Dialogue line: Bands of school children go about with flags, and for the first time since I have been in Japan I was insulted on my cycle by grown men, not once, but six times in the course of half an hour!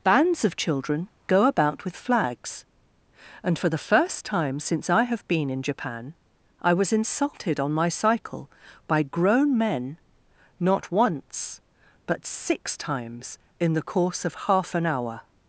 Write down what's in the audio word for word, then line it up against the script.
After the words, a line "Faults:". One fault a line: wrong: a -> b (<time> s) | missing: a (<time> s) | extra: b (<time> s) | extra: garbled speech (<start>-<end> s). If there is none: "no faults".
Bands of children go about with flags, and for the first time since I have been in Japan I was insulted on my cycle by grown men, not once, but six times in the course of half an hour!
Faults:
missing: school (0.6 s)